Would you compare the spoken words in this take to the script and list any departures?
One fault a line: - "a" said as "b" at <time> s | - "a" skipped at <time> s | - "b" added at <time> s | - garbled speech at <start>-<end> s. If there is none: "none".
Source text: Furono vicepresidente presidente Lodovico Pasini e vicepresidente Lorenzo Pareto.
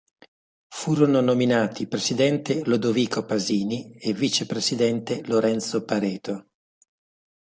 - "vicepresidente" said as "nominati" at 1.2 s